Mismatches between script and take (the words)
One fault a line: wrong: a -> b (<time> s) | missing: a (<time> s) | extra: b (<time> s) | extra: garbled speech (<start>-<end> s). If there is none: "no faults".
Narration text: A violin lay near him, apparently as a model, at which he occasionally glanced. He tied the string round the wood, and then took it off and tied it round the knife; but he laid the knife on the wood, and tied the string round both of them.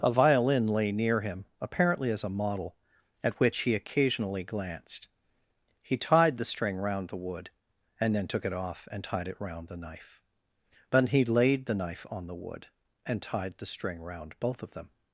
no faults